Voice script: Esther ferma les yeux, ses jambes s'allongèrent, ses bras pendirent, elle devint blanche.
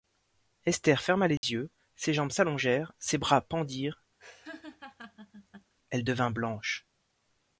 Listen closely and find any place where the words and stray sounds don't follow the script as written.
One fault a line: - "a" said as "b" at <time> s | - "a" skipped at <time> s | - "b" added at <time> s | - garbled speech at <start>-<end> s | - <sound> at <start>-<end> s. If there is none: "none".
- dropout at 1.4-1.4 s
- laugh at 4.2-5.7 s